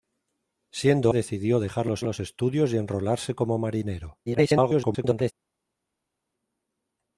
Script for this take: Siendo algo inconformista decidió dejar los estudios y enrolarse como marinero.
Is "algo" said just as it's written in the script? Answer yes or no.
no